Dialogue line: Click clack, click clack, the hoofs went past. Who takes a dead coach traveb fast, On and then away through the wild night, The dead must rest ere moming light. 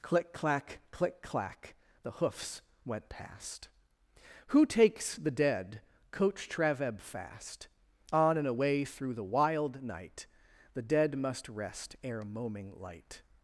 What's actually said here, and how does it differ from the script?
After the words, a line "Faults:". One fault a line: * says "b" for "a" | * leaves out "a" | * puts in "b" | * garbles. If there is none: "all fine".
Click clack, click clack, the hoofs went past. Who takes the dead coach traveb fast, On and away through the wild night, The dead must rest ere moming light.
Faults:
* says "the" for "a"
* leaves out "then"